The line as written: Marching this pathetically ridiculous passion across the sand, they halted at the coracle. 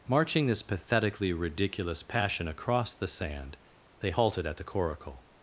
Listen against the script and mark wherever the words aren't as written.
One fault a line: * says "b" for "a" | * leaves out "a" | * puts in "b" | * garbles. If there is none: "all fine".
all fine